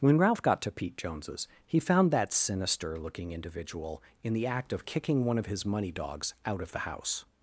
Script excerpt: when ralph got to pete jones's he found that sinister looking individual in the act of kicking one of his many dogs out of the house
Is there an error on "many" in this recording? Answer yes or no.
yes